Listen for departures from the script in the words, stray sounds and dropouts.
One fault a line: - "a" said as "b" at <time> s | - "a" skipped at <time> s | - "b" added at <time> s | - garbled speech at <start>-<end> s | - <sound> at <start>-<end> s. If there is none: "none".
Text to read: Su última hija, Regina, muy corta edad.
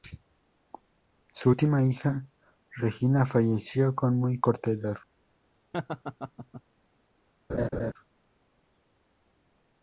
- "falleció con" added at 3.3 s
- laugh at 5.7-6.6 s
- laugh at 7.5-7.9 s